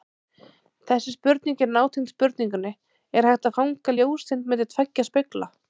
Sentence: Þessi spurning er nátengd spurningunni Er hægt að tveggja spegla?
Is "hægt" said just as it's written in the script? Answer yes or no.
yes